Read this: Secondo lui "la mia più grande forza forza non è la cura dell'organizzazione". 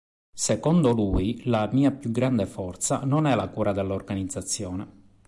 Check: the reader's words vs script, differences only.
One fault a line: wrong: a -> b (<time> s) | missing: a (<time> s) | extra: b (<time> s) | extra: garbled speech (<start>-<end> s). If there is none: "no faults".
missing: forza (3.0 s)